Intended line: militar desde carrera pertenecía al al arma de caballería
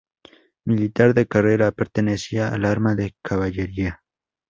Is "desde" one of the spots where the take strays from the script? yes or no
yes